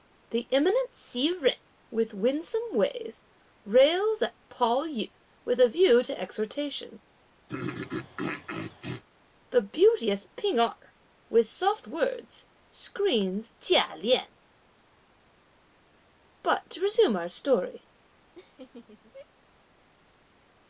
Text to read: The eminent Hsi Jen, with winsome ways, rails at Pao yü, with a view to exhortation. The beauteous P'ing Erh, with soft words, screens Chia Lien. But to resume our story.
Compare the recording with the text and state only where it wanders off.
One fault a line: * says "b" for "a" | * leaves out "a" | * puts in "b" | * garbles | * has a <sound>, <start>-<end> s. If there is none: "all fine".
* has a throat clearing, 7.5-9.0 s
* has a laugh, 18.4-19.3 s